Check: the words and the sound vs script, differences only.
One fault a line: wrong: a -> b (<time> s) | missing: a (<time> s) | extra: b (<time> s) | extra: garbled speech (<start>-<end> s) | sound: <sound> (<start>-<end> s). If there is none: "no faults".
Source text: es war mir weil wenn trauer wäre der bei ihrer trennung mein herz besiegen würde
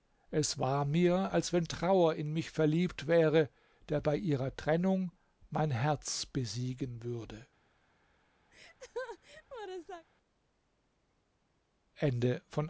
wrong: weil -> als (1.3 s)
extra: in mich verliebt (2.1 s)
sound: laugh (8.5-10.1 s)